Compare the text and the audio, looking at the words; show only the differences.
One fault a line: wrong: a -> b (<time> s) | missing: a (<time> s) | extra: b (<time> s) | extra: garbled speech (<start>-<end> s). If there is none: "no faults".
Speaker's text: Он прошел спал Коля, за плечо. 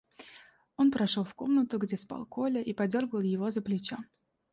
extra: в комнату где (1.2 s)
extra: и подергал его (2.6 s)